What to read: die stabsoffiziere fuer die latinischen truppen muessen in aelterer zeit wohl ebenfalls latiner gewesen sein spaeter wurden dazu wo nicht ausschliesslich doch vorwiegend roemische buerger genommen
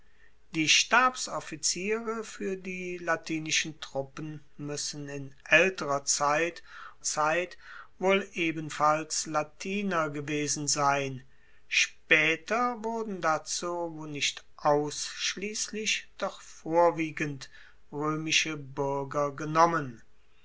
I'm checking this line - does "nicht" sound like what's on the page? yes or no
yes